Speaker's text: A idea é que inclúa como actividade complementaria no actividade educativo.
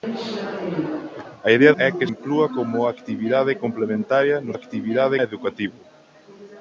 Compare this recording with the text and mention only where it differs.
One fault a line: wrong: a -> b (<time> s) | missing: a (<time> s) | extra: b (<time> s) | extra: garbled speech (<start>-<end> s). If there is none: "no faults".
no faults